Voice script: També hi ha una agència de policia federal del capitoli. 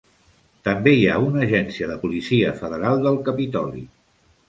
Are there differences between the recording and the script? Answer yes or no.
no